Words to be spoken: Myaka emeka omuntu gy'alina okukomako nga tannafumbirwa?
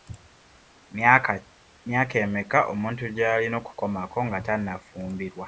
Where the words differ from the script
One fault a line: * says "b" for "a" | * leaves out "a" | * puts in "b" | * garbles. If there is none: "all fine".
all fine